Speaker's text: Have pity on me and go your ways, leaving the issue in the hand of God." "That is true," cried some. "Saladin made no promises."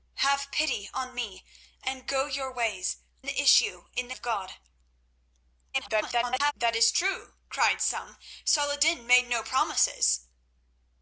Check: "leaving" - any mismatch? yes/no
yes